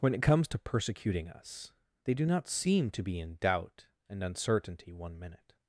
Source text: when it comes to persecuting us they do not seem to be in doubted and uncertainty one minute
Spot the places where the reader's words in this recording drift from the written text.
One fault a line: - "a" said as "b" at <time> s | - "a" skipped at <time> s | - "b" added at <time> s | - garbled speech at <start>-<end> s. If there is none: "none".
- "doubted" said as "doubt" at 3.4 s